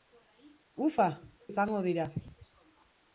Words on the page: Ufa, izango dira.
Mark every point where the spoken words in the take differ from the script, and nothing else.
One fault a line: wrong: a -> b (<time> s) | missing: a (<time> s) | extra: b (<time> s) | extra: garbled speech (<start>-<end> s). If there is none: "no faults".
no faults